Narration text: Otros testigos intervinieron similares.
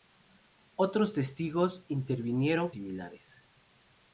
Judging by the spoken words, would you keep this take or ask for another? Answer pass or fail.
pass